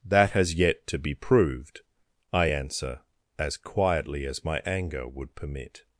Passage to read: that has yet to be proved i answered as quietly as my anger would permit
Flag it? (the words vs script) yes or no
yes